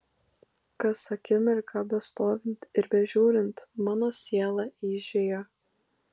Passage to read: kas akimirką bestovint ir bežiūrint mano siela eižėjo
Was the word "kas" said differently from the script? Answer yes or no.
no